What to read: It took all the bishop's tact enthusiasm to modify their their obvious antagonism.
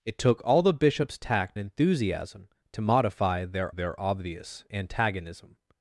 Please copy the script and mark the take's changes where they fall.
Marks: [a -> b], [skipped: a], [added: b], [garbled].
It took all the bishop's tact enthusiasm to modify their their obvious antagonism.